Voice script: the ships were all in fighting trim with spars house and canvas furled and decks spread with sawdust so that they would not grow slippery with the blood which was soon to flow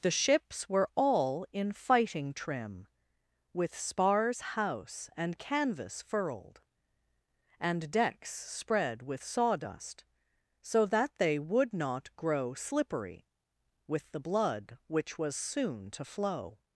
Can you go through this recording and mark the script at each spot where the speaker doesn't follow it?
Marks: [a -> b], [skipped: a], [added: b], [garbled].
the ships were all in fighting trim with spars house and canvas furled and decks spread with sawdust so that they would not grow slippery with the blood which was soon to flow